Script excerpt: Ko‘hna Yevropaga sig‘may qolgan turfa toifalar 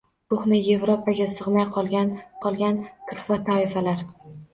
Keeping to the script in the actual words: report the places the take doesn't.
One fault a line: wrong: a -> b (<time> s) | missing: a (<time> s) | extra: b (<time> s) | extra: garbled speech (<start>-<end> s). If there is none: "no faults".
extra: qolgan (2.4 s)